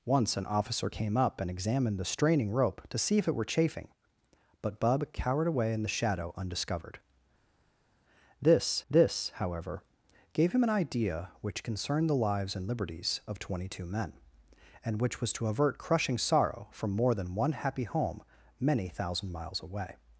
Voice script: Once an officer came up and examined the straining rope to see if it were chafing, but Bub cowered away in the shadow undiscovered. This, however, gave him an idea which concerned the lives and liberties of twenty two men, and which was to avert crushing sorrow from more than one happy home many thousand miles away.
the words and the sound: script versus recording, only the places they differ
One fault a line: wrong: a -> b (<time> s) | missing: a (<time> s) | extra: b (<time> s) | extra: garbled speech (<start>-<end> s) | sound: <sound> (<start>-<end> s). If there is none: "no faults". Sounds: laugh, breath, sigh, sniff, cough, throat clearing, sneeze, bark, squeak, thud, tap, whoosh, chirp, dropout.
extra: this (8.9 s)